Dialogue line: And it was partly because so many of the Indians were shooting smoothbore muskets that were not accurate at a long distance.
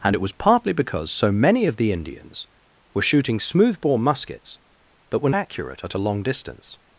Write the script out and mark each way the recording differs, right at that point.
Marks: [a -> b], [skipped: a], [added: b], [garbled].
And it was partly because so many of the Indians were shooting smoothbore muskets that were [skipped: not] accurate at a long distance.